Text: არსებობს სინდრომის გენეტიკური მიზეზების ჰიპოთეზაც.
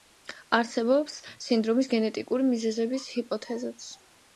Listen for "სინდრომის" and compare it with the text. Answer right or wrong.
right